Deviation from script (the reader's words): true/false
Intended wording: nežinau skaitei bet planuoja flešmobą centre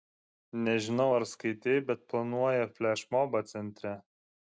true